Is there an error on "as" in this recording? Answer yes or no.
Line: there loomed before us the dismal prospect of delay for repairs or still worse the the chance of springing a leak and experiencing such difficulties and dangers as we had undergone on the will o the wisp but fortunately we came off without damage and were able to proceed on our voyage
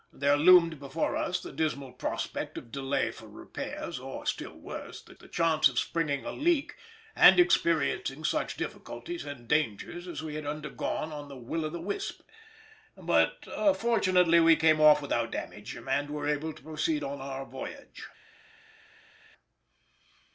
no